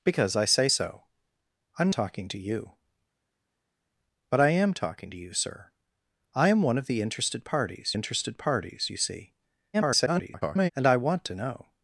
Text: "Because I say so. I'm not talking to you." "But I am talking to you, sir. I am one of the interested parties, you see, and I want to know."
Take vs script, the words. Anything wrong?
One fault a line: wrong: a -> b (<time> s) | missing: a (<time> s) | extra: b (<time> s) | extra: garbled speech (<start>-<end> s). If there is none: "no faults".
missing: not (1.9 s)
extra: interested parties (7.9 s)
extra: garbled speech (9.7-10.7 s)